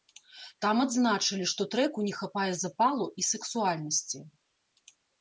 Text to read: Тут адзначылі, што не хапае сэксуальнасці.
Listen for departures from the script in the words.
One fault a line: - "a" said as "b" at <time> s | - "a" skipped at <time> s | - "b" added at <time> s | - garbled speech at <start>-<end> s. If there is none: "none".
- "Тут" said as "Там" at 0.7 s
- "трэку" added at 1.8 s
- "запалу і" added at 2.6 s